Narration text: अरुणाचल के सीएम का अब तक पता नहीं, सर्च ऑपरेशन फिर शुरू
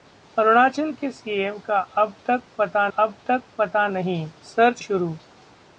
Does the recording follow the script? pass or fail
fail